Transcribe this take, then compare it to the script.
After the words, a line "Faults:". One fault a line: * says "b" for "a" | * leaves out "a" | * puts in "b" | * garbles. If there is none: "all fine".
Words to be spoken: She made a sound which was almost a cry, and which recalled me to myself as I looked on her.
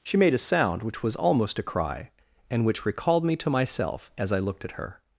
She made a sound which was almost a cry, and which recalled me to myself as I looked at her.
Faults:
* says "at" for "on"